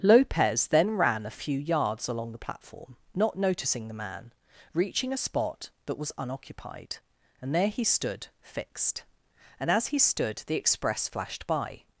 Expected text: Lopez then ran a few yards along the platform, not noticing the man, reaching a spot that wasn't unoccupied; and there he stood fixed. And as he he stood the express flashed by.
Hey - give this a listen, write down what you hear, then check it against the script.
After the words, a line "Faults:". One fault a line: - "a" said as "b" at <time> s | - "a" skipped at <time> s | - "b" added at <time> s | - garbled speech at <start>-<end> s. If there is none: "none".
Lopez then ran a few yards along the platform, not noticing the man, reaching a spot that was unoccupied; and there he stood fixed. And as he stood the express flashed by.
Faults:
- "wasn't" said as "was" at 6.0 s
- "he" skipped at 10.0 s